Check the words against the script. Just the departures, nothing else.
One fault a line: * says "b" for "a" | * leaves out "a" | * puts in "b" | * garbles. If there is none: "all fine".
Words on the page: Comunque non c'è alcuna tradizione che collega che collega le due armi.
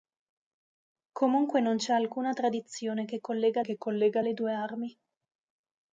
all fine